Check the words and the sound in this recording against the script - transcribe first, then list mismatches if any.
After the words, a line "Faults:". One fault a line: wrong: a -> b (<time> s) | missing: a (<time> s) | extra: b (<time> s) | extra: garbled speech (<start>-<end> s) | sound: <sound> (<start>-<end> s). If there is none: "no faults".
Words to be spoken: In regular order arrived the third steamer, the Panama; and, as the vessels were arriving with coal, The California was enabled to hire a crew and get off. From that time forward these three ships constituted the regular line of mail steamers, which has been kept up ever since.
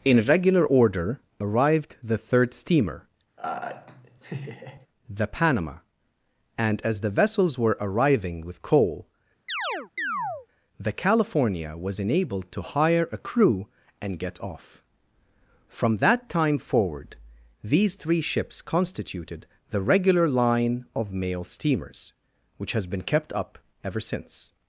In regular order arrived the third steamer, the Panama; and, as the vessels were arriving with coal, The California was enabled to hire a crew and get off. From that time forward these three ships constituted the regular line of mail steamers, which has been kept up ever since.
Faults:
sound: laugh (3.4-4.9 s)
sound: chirp (9.5-10.5 s)